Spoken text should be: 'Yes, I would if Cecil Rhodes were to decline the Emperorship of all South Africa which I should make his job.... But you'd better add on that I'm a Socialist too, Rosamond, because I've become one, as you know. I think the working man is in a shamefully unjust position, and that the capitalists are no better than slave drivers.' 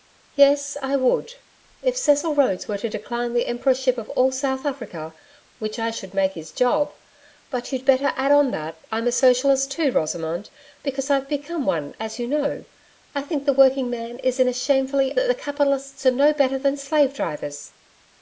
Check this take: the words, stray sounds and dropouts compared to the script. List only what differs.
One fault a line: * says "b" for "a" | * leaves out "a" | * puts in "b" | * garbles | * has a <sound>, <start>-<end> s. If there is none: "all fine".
* leaves out "unjust position and"